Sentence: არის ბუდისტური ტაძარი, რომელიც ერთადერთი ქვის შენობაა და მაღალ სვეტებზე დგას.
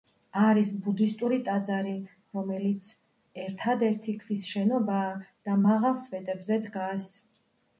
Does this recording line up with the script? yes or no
yes